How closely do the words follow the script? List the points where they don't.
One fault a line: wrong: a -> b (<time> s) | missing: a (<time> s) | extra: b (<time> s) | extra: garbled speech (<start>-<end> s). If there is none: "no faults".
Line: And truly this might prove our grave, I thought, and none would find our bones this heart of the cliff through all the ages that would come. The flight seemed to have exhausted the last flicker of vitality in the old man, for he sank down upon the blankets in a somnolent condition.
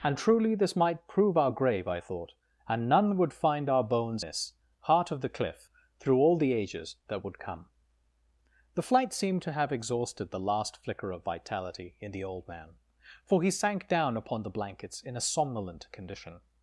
no faults